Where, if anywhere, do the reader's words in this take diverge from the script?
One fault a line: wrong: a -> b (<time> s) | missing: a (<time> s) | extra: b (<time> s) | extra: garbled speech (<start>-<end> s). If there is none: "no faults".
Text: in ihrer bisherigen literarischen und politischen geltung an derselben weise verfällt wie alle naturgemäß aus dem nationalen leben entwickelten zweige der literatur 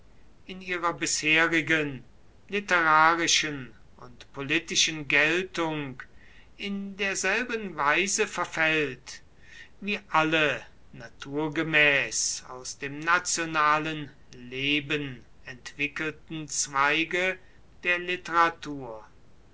wrong: an -> in (6.6 s)